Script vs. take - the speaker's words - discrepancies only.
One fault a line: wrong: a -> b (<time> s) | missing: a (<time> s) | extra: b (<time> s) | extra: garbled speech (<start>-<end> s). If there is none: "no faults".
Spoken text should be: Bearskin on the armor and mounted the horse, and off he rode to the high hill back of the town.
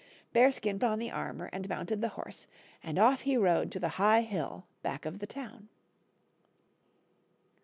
no faults